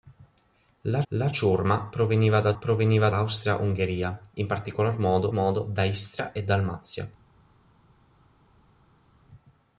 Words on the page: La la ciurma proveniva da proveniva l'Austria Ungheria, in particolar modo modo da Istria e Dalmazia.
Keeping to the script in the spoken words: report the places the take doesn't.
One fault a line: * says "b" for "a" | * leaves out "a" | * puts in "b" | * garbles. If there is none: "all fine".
all fine